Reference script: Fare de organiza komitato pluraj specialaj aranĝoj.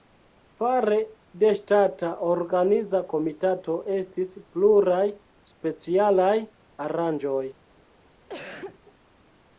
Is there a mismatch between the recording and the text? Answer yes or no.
yes